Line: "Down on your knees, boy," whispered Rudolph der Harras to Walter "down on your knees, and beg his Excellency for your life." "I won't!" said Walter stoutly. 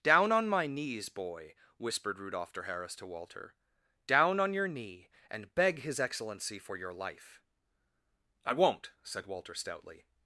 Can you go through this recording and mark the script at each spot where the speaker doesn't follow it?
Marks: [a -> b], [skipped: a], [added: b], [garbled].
"Down on [your -> my] knees, boy," whispered Rudolph der Harras to Walter "down on your [knees, -> knee] and beg his Excellency for your life." "I won't!" said Walter stoutly.